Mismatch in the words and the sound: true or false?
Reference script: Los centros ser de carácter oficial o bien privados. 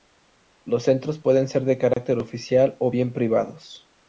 true